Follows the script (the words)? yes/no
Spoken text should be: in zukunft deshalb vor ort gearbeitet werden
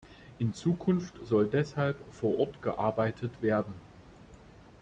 no